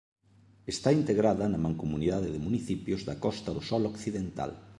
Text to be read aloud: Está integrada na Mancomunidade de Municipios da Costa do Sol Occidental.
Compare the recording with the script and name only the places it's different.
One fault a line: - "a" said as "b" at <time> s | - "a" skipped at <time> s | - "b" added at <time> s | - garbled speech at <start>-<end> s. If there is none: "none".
none